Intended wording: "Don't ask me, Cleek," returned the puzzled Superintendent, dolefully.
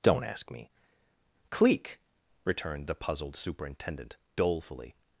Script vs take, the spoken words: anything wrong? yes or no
no